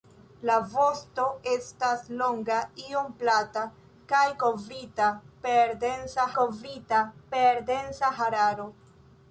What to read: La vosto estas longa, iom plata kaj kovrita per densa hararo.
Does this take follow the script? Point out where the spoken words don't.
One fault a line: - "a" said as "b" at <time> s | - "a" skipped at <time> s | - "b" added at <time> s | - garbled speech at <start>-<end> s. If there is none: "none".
- "kovrita per densa" added at 6.4 s